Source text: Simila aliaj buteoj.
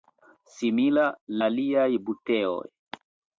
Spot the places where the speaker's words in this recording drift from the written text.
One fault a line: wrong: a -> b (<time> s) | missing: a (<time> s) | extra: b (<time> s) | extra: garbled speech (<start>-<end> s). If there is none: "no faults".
no faults